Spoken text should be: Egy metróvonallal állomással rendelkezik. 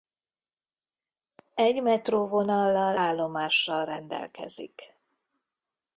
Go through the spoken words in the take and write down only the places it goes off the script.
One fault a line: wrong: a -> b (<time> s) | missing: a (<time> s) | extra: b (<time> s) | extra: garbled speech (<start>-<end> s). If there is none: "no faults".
no faults